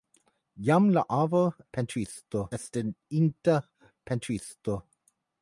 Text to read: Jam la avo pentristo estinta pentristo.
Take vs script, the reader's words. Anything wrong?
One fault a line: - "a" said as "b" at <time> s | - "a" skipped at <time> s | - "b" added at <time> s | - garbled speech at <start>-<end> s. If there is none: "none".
none